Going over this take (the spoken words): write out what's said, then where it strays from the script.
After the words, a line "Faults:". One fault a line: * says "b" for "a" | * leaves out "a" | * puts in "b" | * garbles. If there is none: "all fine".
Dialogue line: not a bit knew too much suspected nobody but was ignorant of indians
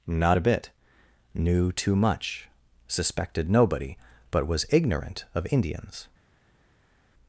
not a bit knew too much suspected nobody but was ignorant of indians
Faults:
all fine